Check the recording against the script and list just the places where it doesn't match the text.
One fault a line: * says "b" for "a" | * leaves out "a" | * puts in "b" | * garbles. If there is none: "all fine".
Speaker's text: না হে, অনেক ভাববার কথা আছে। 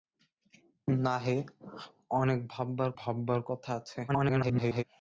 * puts in "ভাববার"
* garbles